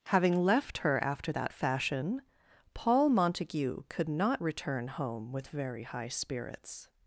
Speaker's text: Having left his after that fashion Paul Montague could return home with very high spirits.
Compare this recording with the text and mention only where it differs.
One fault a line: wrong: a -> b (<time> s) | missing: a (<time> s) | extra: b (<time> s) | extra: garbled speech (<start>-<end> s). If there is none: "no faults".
wrong: his -> her (0.8 s)
extra: not (4.1 s)